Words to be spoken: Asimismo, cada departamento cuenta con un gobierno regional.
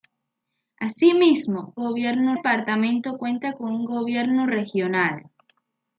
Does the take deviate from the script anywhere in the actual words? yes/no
yes